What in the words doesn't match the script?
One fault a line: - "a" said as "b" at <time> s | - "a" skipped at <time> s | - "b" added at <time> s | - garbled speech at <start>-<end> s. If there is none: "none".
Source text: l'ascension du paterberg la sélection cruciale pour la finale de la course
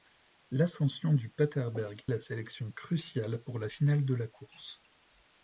none